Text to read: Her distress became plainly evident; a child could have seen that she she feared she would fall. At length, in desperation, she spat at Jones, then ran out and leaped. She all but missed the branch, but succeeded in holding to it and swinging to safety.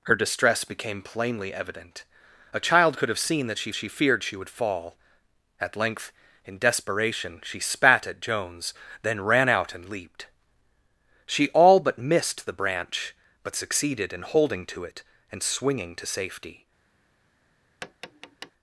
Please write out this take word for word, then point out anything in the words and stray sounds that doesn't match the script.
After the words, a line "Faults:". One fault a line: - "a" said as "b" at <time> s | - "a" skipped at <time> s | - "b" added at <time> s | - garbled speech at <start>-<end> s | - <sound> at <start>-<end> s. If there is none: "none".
Her distress became plainly evident; a child could have seen that she she feared she would fall. At length, in desperation, she spat at Jones, then ran out and leaped. She all but missed the branch, but succeeded in holding to it and swinging to safety.
Faults:
- tap at 17.8-18.5 s